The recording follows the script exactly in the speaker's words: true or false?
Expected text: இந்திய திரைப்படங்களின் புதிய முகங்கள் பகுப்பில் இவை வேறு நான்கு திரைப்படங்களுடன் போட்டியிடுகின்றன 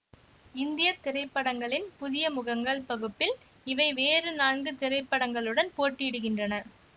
true